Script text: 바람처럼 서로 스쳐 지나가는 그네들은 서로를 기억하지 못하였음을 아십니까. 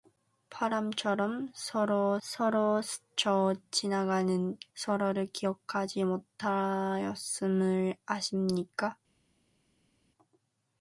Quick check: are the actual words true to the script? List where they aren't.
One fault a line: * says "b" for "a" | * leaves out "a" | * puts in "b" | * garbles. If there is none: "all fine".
* puts in "서로"
* leaves out "그네들은"